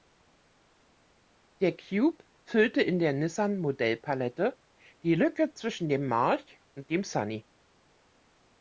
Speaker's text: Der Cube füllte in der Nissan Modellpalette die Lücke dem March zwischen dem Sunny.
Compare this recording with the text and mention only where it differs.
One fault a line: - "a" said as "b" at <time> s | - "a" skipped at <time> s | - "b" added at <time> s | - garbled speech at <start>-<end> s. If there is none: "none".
- "zwischen" added at 5.5 s
- "zwischen" said as "und" at 6.7 s